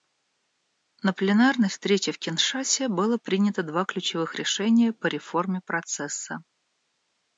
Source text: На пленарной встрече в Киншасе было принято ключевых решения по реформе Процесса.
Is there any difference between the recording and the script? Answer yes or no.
yes